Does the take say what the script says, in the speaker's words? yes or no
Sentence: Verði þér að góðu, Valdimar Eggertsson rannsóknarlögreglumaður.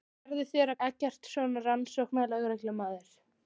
no